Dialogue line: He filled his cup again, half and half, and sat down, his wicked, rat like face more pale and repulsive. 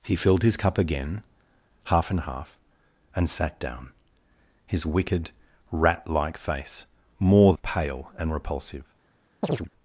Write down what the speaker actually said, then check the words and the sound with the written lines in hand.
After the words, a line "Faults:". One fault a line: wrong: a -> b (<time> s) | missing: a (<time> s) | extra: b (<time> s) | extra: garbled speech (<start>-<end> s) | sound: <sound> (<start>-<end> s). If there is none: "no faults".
He filled his cup again, half and half, and sat down, his wicked, rat like face more pale and repulsive.
Faults:
sound: chirp (9.4-9.7 s)